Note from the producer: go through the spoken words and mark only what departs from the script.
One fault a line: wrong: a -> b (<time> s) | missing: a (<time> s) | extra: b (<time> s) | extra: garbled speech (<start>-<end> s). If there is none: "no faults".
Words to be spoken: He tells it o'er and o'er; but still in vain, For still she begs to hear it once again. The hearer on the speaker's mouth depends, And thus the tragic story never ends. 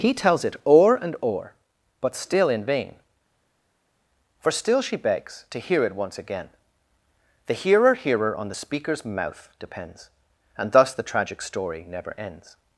extra: hearer (7.9 s)